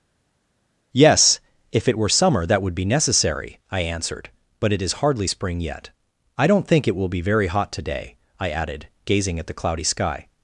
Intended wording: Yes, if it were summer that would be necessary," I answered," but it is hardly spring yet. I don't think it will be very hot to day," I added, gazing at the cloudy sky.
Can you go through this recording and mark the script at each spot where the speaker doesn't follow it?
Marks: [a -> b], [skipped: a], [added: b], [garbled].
Yes, if it were summer that would be necessary," I answered," but it is hardly spring yet. I don't think it will be very hot to day," I added, gazing at the cloudy sky.